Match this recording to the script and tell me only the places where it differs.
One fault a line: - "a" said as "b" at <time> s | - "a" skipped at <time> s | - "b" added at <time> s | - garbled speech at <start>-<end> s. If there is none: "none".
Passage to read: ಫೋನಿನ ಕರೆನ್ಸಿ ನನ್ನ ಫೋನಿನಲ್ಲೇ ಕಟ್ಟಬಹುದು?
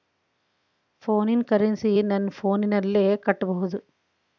none